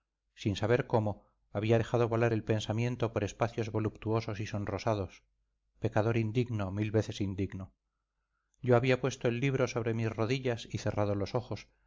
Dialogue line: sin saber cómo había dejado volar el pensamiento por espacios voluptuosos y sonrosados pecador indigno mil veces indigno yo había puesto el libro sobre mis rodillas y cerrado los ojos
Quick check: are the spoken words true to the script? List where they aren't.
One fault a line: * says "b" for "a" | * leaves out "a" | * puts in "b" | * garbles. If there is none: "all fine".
all fine